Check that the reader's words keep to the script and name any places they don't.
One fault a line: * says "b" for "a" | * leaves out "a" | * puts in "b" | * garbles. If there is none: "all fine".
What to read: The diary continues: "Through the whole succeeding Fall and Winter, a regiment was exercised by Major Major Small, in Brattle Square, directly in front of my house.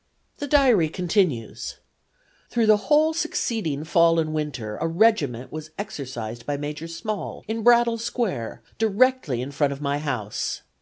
* leaves out "Major"